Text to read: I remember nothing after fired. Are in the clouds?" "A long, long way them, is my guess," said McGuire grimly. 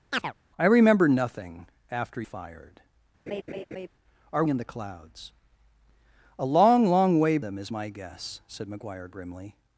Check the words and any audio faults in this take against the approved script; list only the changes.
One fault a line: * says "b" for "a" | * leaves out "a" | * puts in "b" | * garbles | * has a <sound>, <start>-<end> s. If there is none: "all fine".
* has a chirp, 0.1-0.3 s
* has a laugh, 3.3-3.9 s